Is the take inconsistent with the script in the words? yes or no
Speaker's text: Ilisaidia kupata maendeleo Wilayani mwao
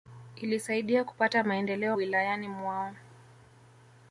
no